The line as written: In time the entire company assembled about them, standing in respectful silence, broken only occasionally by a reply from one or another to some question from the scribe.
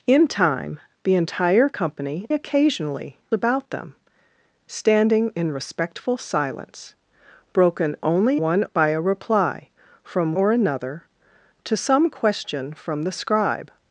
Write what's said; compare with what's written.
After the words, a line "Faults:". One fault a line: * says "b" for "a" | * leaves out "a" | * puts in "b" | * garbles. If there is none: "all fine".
In time the entire company occasionally about them, standing in respectful silence, broken only one by a reply from or another to some question from the scribe.
Faults:
* says "occasionally" for "assembled"
* says "one" for "occasionally"
* leaves out "one"